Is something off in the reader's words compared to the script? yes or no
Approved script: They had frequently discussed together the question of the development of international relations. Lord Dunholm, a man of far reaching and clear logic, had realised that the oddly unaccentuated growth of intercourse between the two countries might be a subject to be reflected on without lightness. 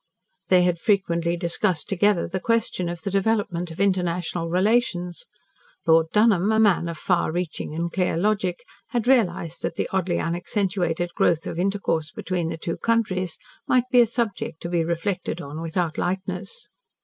no